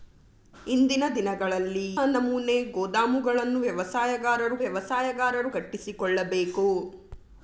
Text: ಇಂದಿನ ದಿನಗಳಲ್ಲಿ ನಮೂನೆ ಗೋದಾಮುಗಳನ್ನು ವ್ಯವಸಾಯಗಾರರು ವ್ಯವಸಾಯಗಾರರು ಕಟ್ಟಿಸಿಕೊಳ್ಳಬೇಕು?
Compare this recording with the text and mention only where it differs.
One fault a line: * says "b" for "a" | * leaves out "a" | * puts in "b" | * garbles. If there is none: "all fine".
all fine